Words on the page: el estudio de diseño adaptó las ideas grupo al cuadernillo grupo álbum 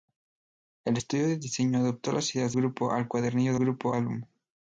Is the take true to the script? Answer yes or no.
yes